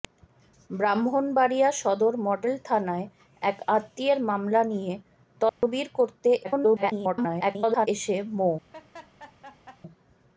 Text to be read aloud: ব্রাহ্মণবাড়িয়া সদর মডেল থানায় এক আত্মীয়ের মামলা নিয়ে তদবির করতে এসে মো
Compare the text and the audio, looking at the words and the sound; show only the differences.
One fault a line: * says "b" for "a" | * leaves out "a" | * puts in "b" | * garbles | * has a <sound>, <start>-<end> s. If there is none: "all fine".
* has a dropout, 5.5-5.6 s
* garbles
* has a laugh, 8.7-9.8 s